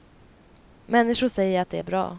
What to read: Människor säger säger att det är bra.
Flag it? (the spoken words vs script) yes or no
yes